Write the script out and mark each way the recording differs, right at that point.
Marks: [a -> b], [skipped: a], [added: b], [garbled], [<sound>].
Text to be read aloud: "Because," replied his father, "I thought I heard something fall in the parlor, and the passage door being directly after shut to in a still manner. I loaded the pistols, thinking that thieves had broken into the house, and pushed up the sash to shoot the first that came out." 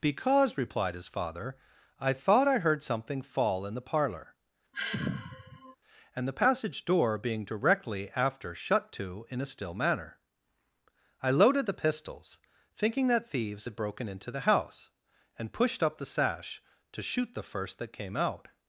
"Because," replied his father, "I thought I heard something fall in the parlor, [sigh] and the passage door being directly after shut to in a still manner. I loaded the pistols, thinking that thieves had broken into the house, and pushed up the sash to shoot the first that came out."